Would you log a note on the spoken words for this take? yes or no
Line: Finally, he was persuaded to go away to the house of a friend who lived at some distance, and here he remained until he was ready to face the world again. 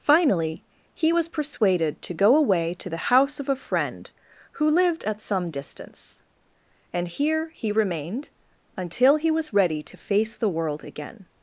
no